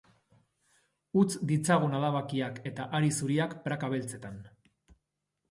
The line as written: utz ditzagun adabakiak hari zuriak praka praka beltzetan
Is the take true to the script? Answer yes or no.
no